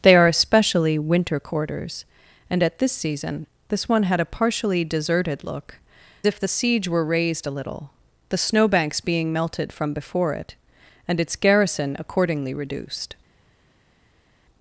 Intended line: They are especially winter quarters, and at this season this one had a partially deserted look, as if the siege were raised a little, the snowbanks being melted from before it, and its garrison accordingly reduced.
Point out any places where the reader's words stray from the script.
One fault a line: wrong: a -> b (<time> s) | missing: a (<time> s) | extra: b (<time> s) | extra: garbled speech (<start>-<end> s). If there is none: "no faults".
missing: as (5.8 s)